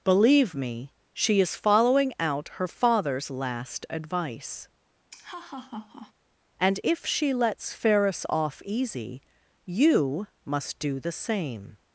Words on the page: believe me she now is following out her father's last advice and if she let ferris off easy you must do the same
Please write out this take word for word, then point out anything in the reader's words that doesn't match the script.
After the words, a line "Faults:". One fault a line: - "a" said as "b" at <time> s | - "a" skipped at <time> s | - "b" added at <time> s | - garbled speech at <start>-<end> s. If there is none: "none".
believe me she is following out her father's last advice and if she lets ferris off easy you must do the same
Faults:
- "now" skipped at 1.4 s
- "let" said as "lets" at 7.3 s